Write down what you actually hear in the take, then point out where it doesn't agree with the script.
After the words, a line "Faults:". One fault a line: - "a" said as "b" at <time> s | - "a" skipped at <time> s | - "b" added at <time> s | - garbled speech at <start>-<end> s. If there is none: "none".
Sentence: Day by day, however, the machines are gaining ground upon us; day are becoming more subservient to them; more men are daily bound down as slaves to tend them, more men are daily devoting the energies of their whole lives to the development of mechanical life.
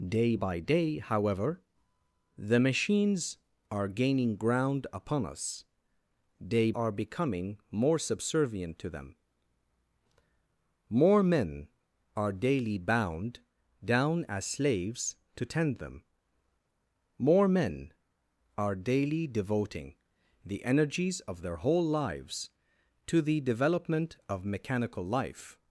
Day by day, however, the machines are gaining ground upon us; day are becoming more subservient to them; more men are daily bound down as slaves to tend them, more men are daily devoting the energies of their whole lives to the development of mechanical life.
Faults:
none